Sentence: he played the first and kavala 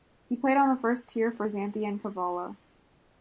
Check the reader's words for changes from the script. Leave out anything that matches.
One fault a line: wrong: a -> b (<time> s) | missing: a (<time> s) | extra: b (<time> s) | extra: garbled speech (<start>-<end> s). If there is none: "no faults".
extra: on (0.6 s)
extra: tier for xanthi (1.1 s)